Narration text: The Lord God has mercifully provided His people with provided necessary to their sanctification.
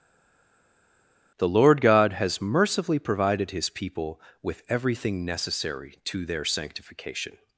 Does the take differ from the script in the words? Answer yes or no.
yes